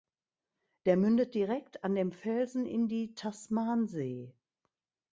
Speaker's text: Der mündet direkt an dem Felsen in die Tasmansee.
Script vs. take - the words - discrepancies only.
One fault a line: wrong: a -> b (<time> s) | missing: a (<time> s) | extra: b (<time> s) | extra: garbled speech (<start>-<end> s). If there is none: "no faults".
no faults